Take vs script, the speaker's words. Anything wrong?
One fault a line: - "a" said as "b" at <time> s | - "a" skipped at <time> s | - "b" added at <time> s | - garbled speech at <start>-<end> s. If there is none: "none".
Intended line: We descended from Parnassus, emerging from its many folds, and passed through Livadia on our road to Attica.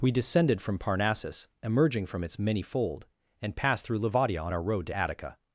- "folds" said as "fold" at 2.6 s